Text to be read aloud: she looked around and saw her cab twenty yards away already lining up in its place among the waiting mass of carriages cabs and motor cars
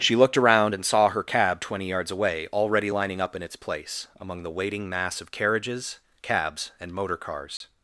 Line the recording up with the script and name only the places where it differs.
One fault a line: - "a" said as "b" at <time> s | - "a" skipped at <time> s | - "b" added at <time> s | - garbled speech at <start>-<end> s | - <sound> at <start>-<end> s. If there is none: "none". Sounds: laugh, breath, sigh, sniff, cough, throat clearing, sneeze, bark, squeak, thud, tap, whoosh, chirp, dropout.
- dropout at 7.6-7.6 s